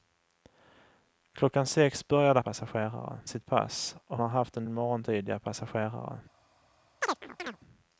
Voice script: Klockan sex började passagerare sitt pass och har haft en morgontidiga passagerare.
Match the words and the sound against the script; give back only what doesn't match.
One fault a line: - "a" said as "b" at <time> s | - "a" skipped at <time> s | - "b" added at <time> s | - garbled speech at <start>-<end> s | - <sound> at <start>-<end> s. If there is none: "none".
- chirp at 7.0-7.6 s